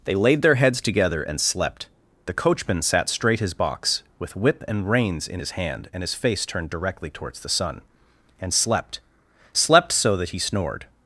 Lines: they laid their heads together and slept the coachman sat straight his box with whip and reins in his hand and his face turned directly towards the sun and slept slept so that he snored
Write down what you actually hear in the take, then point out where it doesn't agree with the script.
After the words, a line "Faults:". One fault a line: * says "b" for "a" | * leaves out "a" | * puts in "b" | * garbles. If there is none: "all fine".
they laid their heads together and slept the coachman sat straight his box with whip and reins in his hand and his face turned directly towards the sun and slept slept so that he snored
Faults:
all fine